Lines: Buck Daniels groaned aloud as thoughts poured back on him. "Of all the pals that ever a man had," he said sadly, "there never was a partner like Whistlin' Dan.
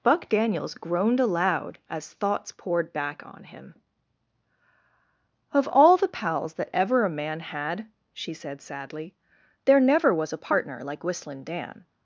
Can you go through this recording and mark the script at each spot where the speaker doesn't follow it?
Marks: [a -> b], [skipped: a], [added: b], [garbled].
Buck Daniels groaned aloud as thoughts poured back on him. "Of all the pals that ever a man had," [he -> she] said sadly, "there never was a partner like Whistlin' Dan.